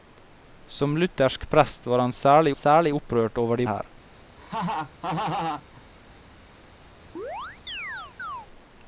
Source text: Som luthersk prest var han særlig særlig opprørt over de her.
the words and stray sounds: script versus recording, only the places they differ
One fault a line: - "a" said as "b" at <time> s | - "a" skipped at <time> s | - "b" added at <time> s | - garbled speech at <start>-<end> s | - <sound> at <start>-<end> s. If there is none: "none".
- laugh at 4.4-5.9 s
- chirp at 7.2-8.5 s